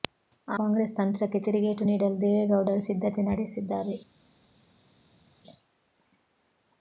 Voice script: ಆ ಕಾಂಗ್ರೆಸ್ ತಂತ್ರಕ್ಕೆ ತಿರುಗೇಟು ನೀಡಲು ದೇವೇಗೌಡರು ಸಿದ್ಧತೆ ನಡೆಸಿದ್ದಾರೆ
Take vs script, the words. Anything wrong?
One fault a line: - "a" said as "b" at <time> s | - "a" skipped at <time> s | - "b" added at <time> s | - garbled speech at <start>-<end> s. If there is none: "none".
none